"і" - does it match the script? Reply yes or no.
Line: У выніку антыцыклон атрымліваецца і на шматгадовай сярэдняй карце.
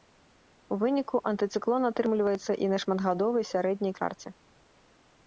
yes